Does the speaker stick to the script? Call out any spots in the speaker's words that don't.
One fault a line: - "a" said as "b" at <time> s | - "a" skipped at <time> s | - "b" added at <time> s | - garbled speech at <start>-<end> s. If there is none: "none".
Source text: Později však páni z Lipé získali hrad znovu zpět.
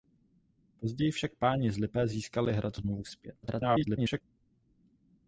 - garbled speech at 3.4-4.2 s